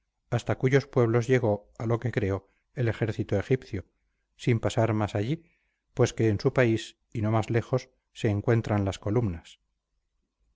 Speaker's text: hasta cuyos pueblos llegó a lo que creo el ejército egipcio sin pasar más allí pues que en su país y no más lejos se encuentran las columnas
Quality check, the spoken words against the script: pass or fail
pass